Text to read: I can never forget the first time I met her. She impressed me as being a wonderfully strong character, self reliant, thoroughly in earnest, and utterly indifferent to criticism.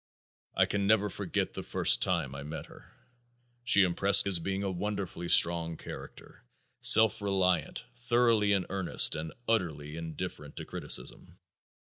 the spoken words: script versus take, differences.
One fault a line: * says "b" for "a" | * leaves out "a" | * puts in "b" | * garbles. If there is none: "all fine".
* leaves out "me"